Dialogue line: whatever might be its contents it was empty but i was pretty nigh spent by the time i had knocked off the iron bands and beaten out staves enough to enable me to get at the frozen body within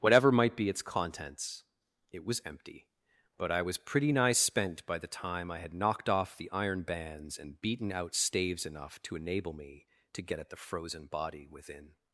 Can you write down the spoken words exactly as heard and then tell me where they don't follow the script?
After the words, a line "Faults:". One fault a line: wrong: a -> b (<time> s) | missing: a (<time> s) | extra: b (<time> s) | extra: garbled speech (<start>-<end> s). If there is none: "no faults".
whatever might be its contents it was empty but i was pretty nigh spent by the time i had knocked off the iron bands and beaten out staves enough to enable me to get at the frozen body within
Faults:
no faults